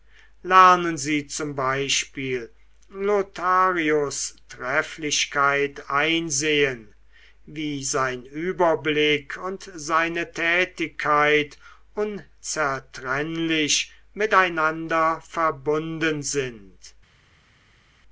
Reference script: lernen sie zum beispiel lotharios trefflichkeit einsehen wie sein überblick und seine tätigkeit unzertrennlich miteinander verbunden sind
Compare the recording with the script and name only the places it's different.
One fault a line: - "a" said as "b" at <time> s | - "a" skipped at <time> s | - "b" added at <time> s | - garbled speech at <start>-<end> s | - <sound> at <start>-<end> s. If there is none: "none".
none